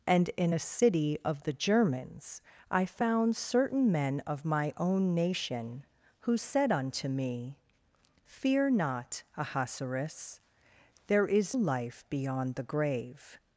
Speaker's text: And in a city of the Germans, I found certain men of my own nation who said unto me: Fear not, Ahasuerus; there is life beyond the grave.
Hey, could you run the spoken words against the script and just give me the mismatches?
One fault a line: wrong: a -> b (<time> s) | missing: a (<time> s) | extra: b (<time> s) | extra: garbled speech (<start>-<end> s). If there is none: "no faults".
no faults